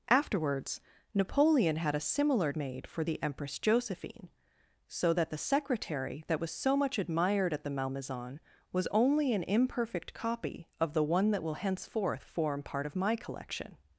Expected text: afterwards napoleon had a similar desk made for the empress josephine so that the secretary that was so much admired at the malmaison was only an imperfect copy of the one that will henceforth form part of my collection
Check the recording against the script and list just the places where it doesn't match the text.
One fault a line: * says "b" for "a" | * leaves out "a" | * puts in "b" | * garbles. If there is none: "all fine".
* leaves out "desk"